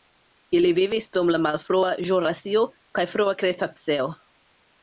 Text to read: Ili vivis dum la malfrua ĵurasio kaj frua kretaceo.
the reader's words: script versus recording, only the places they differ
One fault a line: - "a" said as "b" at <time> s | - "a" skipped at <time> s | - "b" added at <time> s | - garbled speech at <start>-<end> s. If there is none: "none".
none